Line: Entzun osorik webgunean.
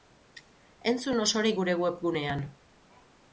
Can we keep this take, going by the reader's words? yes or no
no